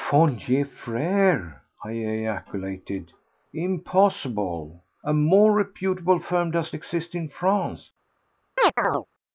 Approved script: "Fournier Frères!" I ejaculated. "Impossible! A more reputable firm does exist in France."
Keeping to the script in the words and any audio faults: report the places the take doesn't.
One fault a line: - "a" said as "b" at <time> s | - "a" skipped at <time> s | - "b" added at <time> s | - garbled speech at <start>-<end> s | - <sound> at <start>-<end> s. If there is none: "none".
- chirp at 8.6-9.1 s